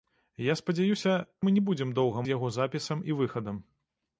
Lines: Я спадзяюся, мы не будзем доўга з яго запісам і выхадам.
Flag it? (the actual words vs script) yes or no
no